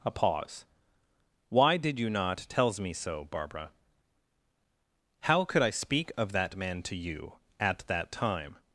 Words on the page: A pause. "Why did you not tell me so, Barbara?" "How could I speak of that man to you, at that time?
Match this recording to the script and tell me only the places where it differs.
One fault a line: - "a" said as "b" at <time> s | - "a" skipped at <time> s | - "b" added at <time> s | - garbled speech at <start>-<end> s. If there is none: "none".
- "tell" said as "tells" at 2.5 s